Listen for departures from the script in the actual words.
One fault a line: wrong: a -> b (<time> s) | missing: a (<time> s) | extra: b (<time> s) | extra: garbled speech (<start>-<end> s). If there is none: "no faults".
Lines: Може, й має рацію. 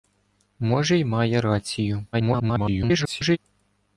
extra: garbled speech (2.1-3.4 s)